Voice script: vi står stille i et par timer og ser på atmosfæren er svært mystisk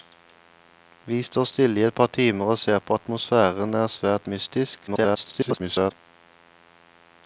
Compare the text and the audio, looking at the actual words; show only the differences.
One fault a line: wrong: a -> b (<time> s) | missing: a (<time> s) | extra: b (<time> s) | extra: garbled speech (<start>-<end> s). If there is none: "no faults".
extra: garbled speech (4.9-5.9 s)